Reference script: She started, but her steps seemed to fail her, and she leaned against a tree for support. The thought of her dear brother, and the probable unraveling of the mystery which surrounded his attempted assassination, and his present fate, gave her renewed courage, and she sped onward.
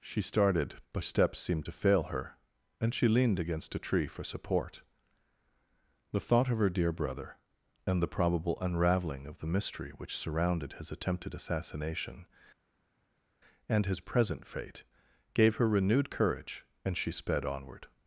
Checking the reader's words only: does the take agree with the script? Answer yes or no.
no